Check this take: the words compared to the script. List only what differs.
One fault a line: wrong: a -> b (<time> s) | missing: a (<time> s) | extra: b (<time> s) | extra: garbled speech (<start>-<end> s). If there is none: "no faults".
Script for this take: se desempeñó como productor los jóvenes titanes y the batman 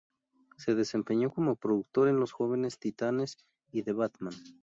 extra: en (2.1 s)